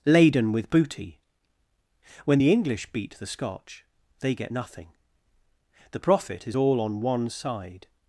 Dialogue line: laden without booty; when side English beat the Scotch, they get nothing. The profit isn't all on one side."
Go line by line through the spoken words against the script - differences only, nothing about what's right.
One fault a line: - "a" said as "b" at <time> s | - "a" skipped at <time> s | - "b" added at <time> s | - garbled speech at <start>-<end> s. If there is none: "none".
- "without" said as "with" at 0.5 s
- "side" said as "the" at 2.4 s
- "isn't" said as "is" at 6.5 s